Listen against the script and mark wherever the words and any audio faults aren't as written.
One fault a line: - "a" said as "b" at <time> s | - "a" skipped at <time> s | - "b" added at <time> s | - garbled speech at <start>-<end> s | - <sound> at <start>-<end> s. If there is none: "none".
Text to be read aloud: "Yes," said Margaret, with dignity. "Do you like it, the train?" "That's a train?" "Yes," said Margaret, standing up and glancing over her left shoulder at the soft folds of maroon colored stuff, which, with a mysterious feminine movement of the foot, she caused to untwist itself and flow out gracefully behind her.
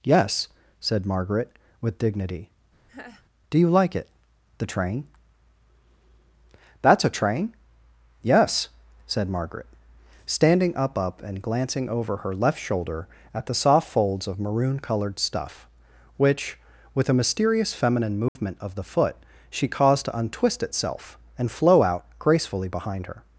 - laugh at 2.9-3.2 s
- "up" added at 11.0 s
- dropout at 18.3-18.4 s